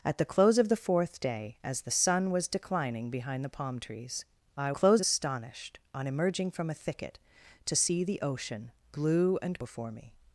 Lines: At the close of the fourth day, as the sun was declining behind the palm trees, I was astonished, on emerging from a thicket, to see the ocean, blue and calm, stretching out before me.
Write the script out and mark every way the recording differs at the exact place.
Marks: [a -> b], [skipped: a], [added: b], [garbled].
At the close of the fourth day, as the sun was declining behind the palm trees, I [was -> close] astonished, on emerging from a thicket, to see the ocean, blue and [skipped: calm, stretching out] before me.